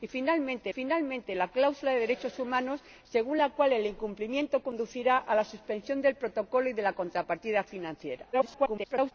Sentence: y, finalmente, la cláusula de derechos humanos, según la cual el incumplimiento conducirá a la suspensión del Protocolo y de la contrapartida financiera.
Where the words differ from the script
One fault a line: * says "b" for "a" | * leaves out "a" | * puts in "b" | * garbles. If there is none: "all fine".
* puts in "finalmente"
* garbles